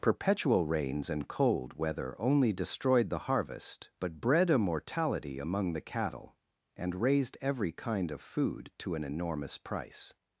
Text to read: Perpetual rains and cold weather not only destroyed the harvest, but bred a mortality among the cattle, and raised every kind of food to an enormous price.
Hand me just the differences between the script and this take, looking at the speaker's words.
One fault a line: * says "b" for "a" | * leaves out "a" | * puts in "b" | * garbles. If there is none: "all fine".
* leaves out "not"